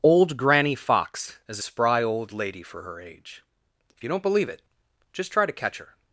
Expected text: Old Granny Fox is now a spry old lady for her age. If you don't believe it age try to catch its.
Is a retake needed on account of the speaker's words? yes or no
yes